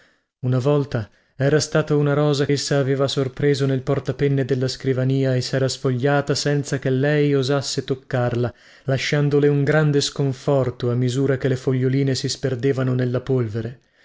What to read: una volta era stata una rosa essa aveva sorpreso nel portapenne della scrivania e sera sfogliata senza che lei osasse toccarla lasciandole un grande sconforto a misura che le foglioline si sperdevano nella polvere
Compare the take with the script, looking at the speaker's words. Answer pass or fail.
pass